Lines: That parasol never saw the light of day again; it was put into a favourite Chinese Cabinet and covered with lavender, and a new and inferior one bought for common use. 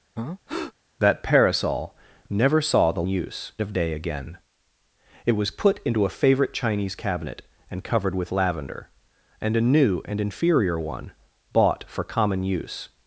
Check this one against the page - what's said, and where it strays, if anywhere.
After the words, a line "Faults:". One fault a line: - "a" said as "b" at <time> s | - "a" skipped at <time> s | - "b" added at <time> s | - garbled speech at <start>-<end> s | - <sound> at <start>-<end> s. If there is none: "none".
That parasol never saw the use of day again; it was put into a favourite Chinese Cabinet and covered with lavender, and a new and inferior one bought for common use.
Faults:
- breath at 0.2-0.7 s
- "light" said as "use" at 3.1 s